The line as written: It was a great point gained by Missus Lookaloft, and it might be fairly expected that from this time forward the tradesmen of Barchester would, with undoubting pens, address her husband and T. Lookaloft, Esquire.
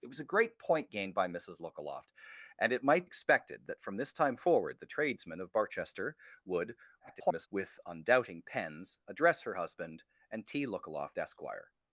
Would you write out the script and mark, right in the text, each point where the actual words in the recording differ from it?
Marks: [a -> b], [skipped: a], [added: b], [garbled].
It was a great point gained by Missus Lookaloft, and it might [skipped: be fairly] expected that from this time forward the tradesmen of Barchester would, [garbled] with undoubting pens, address her husband and T. Lookaloft, Esquire.